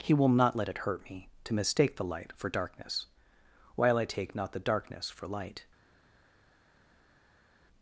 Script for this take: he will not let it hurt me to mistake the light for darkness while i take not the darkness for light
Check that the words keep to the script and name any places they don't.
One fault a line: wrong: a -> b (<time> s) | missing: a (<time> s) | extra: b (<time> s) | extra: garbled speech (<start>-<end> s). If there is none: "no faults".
no faults